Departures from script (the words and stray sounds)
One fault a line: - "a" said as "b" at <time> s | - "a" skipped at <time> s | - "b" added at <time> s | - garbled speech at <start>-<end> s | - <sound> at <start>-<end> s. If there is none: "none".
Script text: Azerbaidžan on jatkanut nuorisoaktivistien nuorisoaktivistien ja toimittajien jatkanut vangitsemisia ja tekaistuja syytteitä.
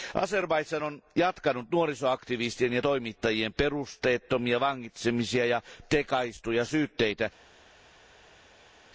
- "nuorisoaktivistien" skipped at 2.7 s
- "jatkanut" said as "perusteettomia" at 3.5 s